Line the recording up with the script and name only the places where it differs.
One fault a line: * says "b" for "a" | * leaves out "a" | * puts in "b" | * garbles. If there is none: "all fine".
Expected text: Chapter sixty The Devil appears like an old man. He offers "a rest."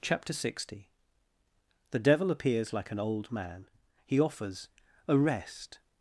all fine